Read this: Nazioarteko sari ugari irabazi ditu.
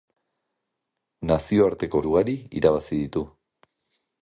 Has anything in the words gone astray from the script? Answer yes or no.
yes